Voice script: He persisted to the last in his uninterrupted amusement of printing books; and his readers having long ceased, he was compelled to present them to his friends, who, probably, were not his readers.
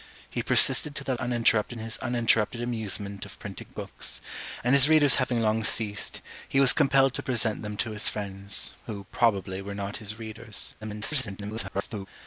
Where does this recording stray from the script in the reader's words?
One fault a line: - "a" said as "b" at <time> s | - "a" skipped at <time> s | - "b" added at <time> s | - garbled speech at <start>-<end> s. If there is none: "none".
- "last" said as "uninterrupted" at 1.2 s
- garbled speech at 10.8-12.1 s